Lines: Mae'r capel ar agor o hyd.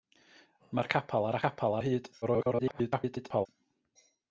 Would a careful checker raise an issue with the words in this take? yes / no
yes